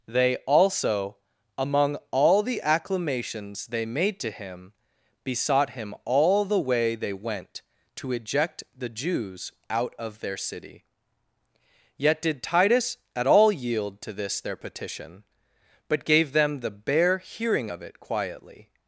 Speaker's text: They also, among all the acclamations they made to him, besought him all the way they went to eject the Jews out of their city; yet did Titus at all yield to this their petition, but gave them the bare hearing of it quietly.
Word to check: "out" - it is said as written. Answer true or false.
true